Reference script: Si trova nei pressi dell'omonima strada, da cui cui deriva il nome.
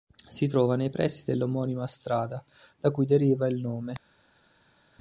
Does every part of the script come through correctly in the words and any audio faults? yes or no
no